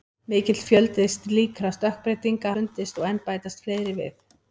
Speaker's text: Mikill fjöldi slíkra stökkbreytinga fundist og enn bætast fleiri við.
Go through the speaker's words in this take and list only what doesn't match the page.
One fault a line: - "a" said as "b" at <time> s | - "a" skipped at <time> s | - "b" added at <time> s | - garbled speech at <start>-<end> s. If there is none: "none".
none